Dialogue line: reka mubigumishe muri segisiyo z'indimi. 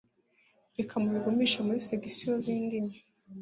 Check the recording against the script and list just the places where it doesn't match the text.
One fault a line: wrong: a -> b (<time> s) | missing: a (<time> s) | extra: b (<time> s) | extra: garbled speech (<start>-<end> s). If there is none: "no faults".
no faults